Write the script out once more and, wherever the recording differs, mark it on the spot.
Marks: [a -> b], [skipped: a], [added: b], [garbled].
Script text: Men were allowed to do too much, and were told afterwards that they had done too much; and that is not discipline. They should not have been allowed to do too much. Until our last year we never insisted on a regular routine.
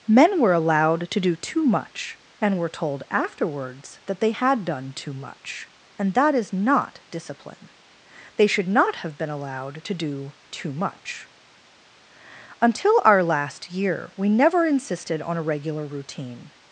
Men were allowed to do too much, and were told afterwards that they had done too much; and that is not discipline. They should not have been allowed to do too much. Until our last year we never insisted on a regular routine.